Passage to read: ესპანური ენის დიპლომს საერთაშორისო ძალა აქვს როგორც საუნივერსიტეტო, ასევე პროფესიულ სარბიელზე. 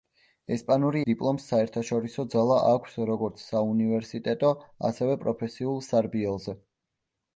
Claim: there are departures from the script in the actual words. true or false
true